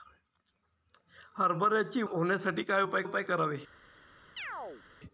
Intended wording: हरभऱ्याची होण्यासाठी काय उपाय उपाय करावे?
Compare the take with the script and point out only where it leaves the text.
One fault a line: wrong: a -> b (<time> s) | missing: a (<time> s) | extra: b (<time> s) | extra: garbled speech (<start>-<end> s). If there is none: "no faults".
no faults